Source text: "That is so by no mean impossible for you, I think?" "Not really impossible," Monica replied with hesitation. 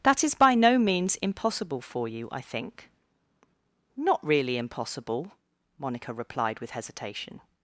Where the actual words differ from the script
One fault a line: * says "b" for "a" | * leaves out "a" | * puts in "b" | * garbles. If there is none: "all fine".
* leaves out "so"
* says "means" for "mean"